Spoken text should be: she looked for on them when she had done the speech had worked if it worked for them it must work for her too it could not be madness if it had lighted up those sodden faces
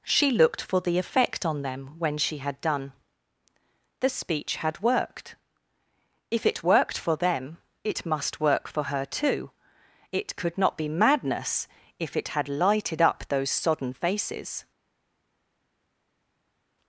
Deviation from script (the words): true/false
true